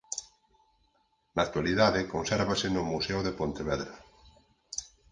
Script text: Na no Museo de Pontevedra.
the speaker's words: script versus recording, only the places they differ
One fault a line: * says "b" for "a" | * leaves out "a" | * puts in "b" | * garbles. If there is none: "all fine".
* puts in "actualidade consérvase"